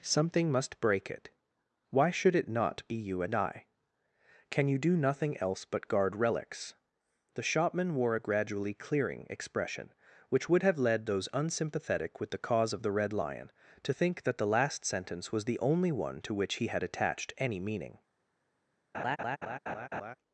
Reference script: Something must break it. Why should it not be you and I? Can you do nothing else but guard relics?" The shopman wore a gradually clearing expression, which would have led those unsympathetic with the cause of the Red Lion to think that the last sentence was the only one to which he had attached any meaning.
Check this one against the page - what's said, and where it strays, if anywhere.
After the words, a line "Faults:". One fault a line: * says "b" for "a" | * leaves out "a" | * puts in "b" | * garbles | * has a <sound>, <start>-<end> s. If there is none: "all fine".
Something must break it. Why should it not be you and I? Can you do nothing else but guard relics?" The shopman wore a gradually clearing expression, which would have led those unsympathetic with the cause of the Red Lion to think that the last sentence was the only one to which he had attached any meaning.
Faults:
* has a laugh, 18.9-20.1 s